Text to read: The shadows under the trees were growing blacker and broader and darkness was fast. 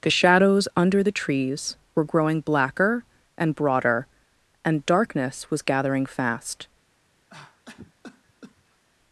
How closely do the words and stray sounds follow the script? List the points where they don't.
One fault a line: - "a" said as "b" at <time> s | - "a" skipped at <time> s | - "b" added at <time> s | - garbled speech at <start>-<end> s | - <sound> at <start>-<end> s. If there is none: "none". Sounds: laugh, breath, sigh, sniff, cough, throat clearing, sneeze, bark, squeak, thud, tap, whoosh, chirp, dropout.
- "gathering" added at 5.6 s
- cough at 7.3-8.8 s